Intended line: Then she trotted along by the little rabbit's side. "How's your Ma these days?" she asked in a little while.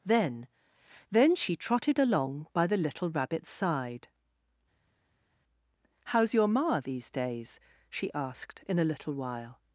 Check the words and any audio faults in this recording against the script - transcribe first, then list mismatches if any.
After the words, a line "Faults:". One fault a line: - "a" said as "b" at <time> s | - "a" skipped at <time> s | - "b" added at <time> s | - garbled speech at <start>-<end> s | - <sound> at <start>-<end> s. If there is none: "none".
Then then she trotted along by the little rabbit's side. "How's your Ma these days?" she asked in a little while.
Faults:
- "then" added at 1.1 s